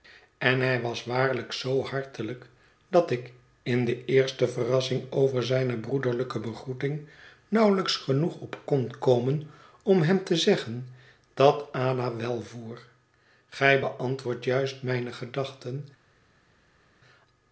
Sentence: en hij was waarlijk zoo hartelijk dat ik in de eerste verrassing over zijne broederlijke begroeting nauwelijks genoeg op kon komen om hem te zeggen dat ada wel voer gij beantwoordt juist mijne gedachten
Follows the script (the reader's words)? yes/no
yes